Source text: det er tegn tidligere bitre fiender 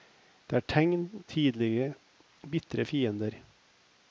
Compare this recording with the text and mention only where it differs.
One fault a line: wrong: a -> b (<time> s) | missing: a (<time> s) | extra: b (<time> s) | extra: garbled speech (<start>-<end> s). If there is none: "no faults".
no faults